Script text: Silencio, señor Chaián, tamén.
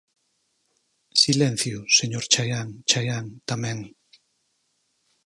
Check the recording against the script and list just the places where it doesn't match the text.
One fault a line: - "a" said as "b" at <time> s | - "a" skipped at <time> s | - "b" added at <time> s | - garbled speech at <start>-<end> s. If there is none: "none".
- "Chaián" added at 2.9 s